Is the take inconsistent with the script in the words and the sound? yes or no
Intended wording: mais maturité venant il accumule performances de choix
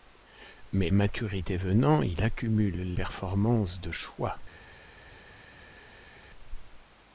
no